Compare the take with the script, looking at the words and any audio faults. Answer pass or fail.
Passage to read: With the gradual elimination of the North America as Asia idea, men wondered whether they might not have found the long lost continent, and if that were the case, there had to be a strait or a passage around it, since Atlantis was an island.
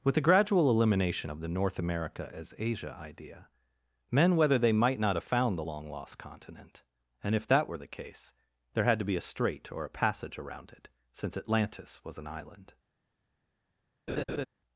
fail